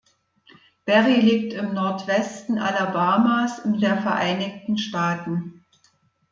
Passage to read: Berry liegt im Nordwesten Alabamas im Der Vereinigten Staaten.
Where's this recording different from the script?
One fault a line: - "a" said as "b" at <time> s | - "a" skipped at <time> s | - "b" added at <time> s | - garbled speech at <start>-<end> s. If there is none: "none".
none